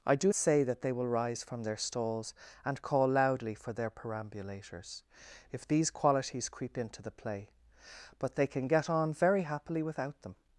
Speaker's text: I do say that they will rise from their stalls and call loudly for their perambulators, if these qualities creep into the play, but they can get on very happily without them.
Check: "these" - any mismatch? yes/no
no